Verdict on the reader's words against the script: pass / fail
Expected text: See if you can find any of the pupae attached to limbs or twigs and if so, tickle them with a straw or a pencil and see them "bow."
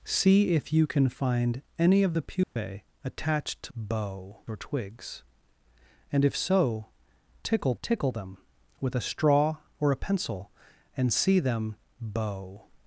fail